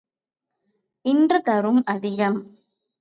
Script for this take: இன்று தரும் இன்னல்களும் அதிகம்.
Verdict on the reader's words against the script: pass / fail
fail